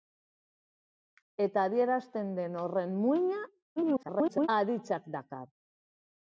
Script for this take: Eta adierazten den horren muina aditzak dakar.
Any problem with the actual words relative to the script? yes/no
yes